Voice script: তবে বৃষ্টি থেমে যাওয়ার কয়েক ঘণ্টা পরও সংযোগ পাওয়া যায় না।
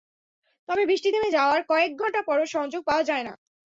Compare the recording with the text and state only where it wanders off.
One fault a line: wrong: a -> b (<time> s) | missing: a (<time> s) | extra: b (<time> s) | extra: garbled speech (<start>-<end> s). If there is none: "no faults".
no faults